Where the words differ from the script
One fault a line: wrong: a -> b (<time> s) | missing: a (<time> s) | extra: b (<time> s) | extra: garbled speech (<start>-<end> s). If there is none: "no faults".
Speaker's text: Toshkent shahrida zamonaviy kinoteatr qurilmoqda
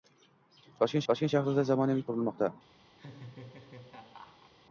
extra: toshkent (1.1 s)
missing: kinoteatr (2.1 s)